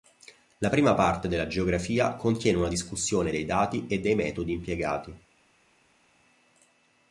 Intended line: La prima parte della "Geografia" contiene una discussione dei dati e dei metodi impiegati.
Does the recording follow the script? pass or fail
pass